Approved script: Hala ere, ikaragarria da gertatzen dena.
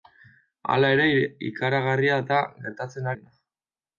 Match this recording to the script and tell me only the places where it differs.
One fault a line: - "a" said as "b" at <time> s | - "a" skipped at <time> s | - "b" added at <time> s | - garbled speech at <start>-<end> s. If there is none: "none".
none